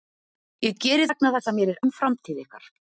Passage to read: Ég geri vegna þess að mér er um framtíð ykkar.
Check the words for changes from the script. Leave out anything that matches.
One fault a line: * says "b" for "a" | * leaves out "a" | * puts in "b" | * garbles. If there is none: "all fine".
all fine